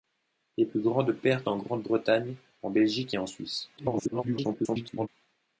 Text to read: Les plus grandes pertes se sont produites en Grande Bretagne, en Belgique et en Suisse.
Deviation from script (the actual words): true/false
true